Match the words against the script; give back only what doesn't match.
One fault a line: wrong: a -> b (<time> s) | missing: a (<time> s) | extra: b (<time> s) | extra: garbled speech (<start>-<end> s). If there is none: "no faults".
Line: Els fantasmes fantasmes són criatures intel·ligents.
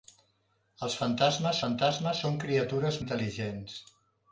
no faults